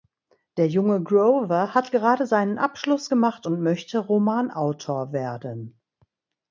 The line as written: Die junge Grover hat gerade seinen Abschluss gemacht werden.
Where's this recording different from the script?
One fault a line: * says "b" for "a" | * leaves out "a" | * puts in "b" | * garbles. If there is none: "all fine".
* says "Der" for "Die"
* puts in "und möchte Romanautor"